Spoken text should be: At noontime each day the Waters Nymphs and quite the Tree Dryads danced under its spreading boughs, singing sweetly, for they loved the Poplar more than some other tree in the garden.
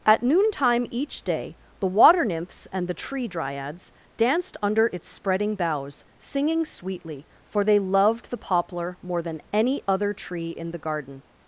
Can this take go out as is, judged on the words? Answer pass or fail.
fail